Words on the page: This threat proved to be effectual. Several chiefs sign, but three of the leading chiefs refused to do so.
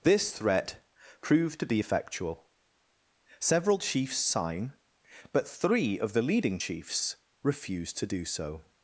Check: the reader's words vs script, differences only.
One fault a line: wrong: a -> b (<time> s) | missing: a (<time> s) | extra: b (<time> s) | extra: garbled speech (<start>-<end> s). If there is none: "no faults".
no faults